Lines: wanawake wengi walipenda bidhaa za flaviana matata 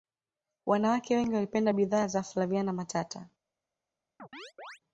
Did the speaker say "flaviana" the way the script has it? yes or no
yes